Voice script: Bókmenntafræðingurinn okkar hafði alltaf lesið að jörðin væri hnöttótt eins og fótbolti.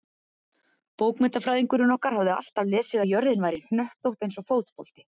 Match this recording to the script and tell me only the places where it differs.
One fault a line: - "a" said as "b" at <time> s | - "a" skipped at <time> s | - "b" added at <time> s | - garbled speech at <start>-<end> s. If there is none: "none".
none